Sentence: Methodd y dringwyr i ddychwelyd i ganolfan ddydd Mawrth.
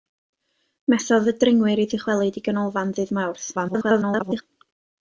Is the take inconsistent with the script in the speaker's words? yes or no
yes